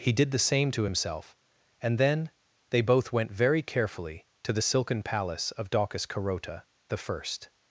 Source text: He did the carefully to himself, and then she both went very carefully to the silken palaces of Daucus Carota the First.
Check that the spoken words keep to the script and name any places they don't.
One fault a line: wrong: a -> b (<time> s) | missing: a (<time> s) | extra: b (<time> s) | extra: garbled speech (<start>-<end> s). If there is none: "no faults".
wrong: carefully -> same (0.4 s)
wrong: she -> they (2.7 s)
wrong: palaces -> palace (5.0 s)